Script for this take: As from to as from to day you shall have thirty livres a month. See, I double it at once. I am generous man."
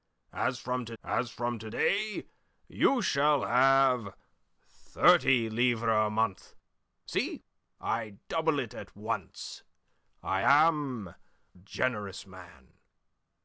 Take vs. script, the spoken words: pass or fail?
pass